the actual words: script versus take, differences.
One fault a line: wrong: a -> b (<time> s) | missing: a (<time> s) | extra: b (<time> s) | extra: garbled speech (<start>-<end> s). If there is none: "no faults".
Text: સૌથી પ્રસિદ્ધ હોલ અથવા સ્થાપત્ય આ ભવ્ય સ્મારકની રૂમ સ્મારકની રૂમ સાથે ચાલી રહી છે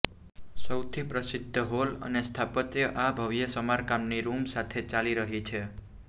wrong: અથવા -> અને (2.1 s)
missing: સ્મારકની રૂમ (4.5 s)